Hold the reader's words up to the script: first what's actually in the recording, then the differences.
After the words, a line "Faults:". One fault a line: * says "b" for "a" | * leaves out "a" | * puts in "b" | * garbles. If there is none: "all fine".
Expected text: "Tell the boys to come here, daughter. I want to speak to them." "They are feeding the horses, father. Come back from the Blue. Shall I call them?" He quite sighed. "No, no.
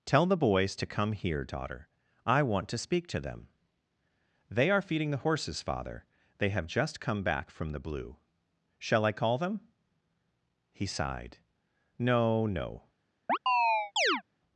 "Tell the boys to come here, daughter. I want to speak to them." "They are feeding the horses, father. They have just come back from the Blue. Shall I call them?" He sighed. "No, no.
Faults:
* puts in "They have just"
* leaves out "quite"